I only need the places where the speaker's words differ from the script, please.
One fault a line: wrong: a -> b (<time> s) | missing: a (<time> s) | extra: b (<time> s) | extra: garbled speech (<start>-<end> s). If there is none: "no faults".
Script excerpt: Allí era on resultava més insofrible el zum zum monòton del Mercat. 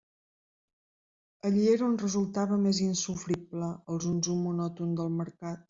no faults